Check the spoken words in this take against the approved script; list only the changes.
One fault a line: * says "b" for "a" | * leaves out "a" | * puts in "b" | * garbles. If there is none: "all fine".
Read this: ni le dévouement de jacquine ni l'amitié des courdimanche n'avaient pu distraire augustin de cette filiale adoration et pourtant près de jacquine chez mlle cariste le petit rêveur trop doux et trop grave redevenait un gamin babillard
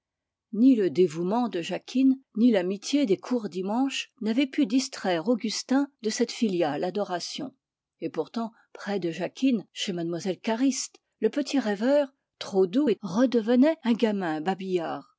* leaves out "trop grave"